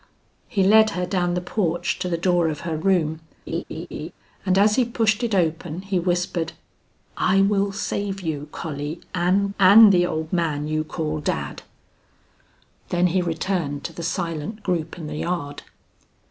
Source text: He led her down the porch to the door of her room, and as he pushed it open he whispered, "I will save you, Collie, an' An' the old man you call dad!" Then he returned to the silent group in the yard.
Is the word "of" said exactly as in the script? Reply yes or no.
yes